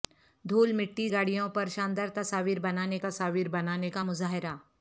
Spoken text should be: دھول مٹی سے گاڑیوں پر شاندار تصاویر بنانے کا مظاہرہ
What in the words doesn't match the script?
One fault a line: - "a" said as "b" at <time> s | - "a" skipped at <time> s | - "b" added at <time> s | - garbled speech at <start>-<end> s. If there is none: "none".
- "سے" skipped at 1.1 s
- "تصاویر بنانے" added at 3.0 s